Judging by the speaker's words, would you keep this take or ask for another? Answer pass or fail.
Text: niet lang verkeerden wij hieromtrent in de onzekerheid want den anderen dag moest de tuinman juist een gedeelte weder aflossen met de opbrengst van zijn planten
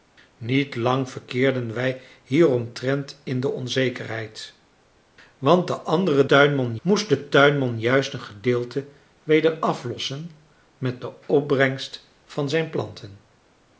fail